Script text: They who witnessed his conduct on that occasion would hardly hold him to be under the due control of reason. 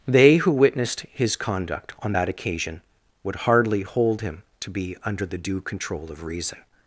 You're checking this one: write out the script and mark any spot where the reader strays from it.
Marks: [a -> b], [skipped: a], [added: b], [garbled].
They who witnessed his conduct on that occasion would hardly hold him to be under the due control of reason.